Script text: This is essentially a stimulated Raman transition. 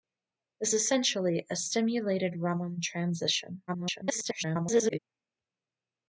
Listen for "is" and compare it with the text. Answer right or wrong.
wrong